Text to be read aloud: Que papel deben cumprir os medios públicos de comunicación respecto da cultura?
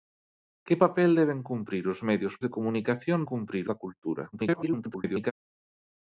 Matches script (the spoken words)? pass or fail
fail